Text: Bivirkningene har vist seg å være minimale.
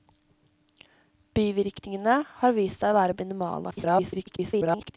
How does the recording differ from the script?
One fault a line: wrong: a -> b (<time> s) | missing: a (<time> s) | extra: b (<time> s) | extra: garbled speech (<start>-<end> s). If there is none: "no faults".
extra: garbled speech (3.7-5.0 s)